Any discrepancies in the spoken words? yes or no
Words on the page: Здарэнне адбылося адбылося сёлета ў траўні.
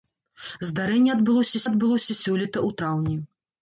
no